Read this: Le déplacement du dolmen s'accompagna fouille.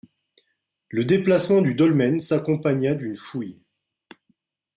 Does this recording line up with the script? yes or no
no